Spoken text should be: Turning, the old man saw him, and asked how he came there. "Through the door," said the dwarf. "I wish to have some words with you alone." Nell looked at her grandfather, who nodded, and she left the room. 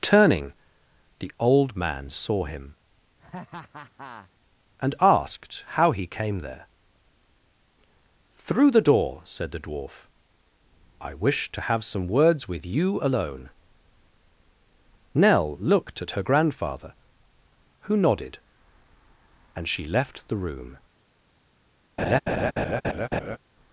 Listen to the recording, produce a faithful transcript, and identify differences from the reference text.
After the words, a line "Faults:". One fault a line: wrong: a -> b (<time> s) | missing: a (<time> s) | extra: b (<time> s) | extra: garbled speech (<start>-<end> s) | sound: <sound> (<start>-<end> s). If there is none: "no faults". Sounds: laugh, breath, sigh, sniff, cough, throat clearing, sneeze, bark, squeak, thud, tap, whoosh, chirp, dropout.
Turning, the old man saw him, and asked how he came there. "Through the door," said the dwarf. "I wish to have some words with you alone." Nell looked at her grandfather, who nodded, and she left the room.
Faults:
sound: laugh (3.2-4.3 s)
sound: laugh (22.0-23.4 s)